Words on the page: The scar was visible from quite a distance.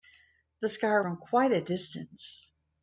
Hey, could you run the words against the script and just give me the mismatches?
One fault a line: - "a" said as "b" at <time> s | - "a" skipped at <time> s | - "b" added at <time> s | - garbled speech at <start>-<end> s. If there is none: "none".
- "was visible" skipped at 1.1 s